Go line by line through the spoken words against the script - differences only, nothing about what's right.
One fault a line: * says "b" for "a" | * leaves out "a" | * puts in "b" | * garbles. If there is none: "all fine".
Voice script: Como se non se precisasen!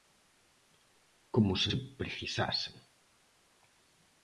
* leaves out "non"